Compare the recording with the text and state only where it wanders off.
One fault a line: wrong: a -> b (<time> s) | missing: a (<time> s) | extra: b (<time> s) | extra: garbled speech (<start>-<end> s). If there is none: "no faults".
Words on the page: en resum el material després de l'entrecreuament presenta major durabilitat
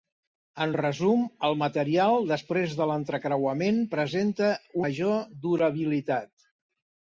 no faults